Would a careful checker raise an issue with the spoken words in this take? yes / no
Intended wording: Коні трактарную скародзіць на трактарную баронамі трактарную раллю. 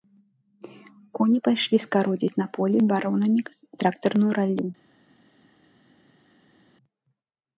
yes